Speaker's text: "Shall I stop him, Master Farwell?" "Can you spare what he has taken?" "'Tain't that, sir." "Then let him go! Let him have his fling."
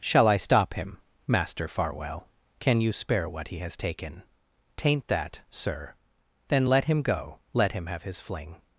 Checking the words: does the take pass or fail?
pass